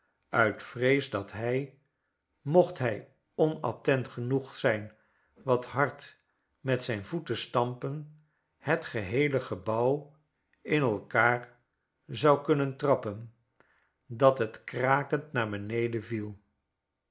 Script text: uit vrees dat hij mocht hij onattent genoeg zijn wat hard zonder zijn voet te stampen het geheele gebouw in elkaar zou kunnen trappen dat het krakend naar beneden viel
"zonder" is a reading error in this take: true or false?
true